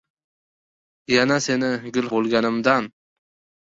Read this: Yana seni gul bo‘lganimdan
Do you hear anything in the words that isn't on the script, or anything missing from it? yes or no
no